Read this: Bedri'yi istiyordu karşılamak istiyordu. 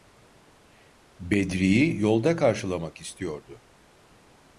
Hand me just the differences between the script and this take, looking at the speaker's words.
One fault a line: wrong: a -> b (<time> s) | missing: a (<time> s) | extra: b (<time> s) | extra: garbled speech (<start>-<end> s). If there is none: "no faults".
wrong: istiyordu -> yolda (2.0 s)